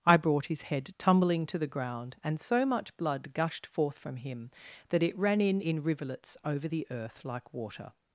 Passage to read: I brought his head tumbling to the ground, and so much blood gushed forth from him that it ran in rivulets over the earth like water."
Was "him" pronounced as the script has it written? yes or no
yes